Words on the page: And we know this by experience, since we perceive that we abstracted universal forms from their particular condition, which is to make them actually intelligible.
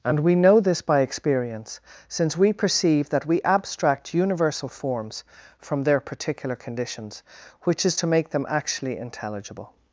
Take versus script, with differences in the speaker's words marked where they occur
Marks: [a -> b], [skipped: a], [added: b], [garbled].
And we know this by experience, since we perceive that we [abstracted -> abstract] universal forms from their particular [condition, -> conditions] which is to make them actually intelligible.